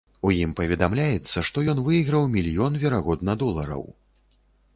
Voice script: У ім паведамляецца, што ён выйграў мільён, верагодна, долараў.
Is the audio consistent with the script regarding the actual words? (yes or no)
yes